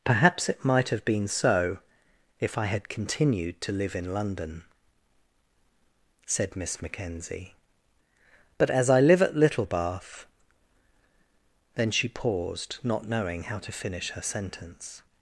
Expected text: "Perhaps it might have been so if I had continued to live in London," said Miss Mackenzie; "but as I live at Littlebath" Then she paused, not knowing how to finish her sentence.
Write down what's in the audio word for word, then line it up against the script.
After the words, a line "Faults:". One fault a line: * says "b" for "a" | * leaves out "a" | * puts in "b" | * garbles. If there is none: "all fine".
"Perhaps it might have been so if I had continued to live in London," said Miss Mackenzie; "but as I live at Littlebath" Then she paused, not knowing how to finish her sentence.
Faults:
all fine